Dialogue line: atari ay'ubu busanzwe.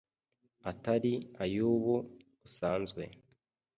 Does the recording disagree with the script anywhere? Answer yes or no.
no